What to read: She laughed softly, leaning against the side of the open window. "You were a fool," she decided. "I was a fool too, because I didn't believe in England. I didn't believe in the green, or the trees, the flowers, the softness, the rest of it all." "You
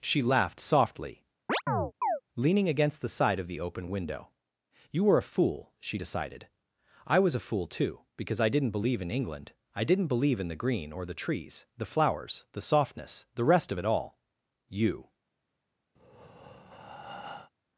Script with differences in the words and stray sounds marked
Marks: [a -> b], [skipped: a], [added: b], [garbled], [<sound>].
She laughed softly, [chirp] leaning against the side of the open window. "You were a fool," she decided. "I was a fool too, because I didn't believe in England. I didn't believe in the green, or the trees, the flowers, the softness, the rest of it all." "You [breath]